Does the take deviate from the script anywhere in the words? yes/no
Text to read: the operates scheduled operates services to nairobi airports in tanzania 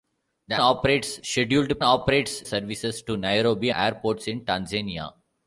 no